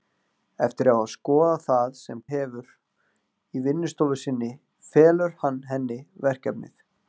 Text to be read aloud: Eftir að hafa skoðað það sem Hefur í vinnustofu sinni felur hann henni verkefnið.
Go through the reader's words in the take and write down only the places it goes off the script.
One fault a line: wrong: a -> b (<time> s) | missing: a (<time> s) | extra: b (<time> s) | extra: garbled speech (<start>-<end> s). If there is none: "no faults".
no faults